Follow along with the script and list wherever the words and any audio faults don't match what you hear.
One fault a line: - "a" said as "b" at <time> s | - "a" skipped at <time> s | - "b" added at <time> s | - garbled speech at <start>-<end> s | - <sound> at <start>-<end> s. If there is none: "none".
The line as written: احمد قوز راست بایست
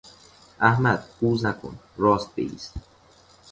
- "نکن" added at 1.4 s